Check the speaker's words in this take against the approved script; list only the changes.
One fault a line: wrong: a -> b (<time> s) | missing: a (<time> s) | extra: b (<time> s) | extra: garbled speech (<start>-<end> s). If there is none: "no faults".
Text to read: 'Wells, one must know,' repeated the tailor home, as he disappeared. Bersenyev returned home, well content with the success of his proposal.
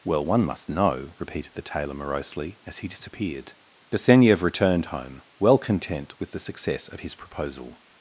wrong: Wells -> Well (0.0 s)
wrong: home -> morosely (1.9 s)